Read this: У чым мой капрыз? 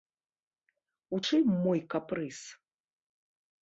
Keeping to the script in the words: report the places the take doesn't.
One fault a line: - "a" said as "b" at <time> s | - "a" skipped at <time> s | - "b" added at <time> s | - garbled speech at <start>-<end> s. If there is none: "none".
none